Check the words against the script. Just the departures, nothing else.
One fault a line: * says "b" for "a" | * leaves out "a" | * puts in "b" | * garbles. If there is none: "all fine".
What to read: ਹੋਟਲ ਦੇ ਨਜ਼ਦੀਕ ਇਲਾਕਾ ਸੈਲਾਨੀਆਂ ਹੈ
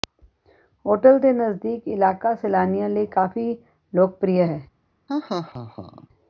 * puts in "ਲਈ ਕਾਫ਼ੀ ਲੋਕਪ੍ਰਿਯ"